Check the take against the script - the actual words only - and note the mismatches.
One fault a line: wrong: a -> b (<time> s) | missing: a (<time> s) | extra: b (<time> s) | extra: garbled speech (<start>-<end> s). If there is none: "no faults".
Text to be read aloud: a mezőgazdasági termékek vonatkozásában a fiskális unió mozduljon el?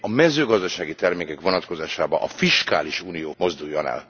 no faults